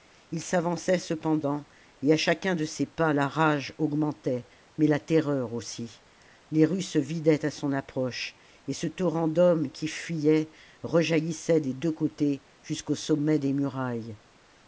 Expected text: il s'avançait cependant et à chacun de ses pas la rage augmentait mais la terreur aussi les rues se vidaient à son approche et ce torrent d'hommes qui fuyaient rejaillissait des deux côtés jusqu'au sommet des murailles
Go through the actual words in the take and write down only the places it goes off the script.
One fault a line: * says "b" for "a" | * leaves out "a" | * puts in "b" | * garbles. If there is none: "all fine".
all fine